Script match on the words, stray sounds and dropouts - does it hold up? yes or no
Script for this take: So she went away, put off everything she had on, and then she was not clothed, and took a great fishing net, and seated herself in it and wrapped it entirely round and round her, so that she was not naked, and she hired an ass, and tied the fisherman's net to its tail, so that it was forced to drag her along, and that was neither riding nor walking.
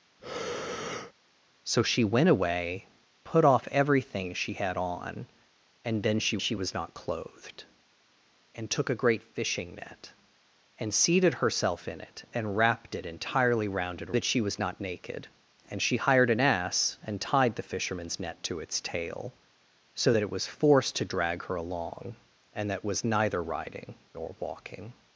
no